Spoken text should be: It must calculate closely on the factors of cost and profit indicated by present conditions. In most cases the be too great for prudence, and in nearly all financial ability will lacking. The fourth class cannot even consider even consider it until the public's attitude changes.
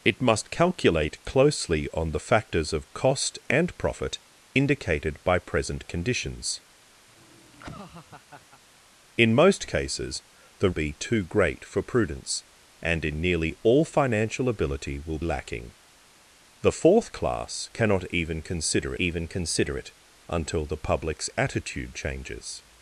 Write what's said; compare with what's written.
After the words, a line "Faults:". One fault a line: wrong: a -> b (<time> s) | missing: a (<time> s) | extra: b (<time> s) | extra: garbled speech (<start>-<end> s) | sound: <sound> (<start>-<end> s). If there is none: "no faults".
It must calculate closely on the factors of cost and profit indicated by present conditions. In most cases the be too great for prudence, and in nearly all financial ability will lacking. The fourth class cannot even consider even consider it until the public's attitude changes.
Faults:
sound: laugh (7.1-8.6 s)